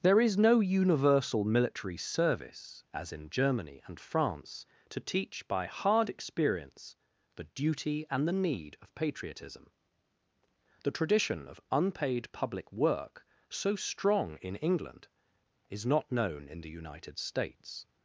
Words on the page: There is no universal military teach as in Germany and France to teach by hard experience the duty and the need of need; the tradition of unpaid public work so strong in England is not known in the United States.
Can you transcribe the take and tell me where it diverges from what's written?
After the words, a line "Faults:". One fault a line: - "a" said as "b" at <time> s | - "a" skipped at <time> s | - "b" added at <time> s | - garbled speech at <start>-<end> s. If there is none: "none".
There is no universal military service as in Germany and France to teach by hard experience the duty and the need of patriotism; the tradition of unpaid public work so strong in England is not known in the United States.
Faults:
- "teach" said as "service" at 2.0 s
- "need" said as "patriotism" at 8.9 s